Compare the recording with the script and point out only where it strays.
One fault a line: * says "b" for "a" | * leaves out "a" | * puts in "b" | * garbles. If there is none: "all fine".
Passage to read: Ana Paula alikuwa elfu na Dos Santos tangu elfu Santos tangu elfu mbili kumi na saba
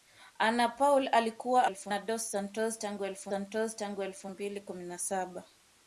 all fine